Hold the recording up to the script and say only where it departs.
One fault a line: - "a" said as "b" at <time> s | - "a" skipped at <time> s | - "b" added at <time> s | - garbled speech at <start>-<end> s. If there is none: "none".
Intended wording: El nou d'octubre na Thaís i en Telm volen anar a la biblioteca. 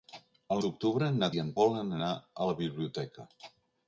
- "nou" skipped at 0.6 s
- "Thaís" skipped at 1.3 s
- "Telm" skipped at 1.5 s